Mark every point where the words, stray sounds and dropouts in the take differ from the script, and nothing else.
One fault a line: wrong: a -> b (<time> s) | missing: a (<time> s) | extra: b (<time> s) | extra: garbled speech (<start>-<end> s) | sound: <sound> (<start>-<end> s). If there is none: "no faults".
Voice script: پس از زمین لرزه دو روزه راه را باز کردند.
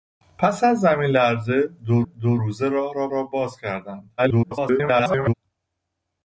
extra: دو (2.0 s)
extra: را (3.1 s)
extra: garbled speech (4.2-5.3 s)